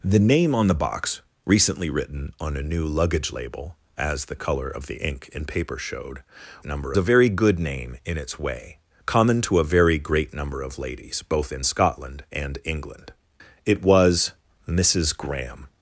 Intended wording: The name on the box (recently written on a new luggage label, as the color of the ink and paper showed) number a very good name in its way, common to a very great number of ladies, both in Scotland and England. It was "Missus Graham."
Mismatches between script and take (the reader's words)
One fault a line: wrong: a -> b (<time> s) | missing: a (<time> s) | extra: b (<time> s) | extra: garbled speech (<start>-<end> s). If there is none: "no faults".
no faults